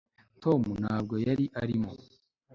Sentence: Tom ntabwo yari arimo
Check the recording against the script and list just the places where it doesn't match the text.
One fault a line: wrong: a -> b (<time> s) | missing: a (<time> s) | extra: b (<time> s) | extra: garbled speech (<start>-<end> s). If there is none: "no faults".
no faults